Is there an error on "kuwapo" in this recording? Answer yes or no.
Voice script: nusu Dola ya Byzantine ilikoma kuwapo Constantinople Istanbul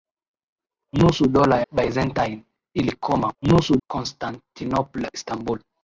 yes